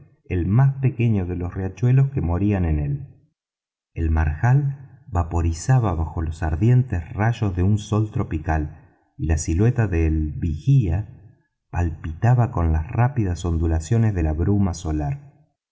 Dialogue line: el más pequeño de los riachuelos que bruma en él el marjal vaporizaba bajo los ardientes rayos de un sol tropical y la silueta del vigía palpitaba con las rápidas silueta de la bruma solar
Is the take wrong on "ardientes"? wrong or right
right